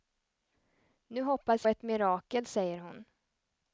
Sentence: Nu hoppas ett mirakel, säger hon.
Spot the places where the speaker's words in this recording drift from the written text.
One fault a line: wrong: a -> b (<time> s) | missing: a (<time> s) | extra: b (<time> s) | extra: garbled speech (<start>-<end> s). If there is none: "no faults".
no faults